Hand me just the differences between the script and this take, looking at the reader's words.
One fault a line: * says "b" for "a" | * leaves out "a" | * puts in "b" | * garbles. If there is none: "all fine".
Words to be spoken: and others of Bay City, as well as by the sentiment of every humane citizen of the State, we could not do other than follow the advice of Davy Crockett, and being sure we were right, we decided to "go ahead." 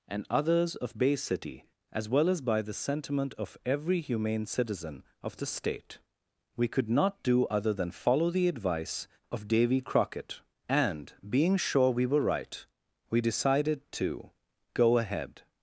all fine